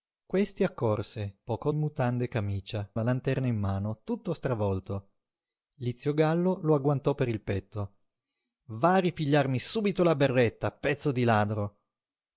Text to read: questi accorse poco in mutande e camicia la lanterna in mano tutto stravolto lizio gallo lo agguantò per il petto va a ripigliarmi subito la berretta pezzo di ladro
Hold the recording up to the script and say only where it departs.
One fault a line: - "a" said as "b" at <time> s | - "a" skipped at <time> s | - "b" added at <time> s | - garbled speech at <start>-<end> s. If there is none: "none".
none